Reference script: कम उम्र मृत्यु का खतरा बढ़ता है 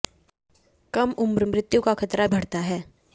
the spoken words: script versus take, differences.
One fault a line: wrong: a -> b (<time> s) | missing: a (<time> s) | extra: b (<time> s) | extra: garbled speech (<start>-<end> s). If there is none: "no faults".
no faults